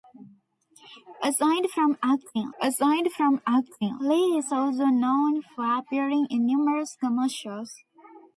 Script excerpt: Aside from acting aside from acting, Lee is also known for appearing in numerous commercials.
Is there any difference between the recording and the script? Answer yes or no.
no